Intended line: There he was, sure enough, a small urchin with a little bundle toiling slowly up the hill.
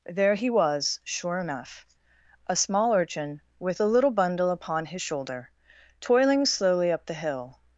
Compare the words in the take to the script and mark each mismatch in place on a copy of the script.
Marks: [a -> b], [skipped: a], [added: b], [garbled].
There he was, sure enough, a small urchin with a little bundle [added: upon his shoulder] toiling slowly up the hill.